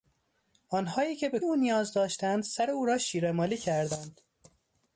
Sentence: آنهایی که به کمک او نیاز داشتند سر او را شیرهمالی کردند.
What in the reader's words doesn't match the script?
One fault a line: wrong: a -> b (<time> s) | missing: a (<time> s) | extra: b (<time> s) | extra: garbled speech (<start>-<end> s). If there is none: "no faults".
missing: کمک (1.4 s)